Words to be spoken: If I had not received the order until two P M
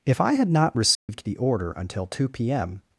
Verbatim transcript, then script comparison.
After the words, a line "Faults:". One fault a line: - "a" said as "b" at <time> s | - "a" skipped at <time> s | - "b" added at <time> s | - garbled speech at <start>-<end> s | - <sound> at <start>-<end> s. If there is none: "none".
If I had not received the order until two P M
Faults:
- dropout at 0.9-1.1 s